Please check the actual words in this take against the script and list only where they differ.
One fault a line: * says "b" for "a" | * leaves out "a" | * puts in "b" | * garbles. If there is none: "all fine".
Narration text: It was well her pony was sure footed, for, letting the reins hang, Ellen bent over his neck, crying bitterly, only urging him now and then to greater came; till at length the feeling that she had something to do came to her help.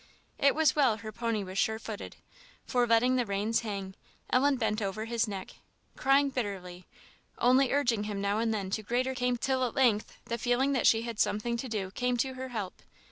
all fine